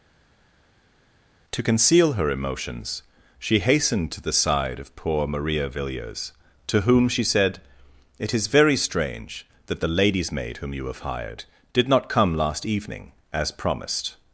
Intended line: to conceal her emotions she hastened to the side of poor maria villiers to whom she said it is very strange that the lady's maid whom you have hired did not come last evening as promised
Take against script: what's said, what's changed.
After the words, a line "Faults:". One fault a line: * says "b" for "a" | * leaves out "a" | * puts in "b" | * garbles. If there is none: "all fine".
to conceal her emotions she hastened to the side of poor maria villiers to whom she said it is very strange that the lady's maid whom you have hired did not come last evening as promised
Faults:
all fine